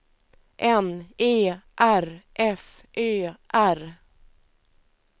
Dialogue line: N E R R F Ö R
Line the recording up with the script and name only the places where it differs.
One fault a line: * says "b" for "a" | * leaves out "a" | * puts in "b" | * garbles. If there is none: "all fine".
* leaves out "R"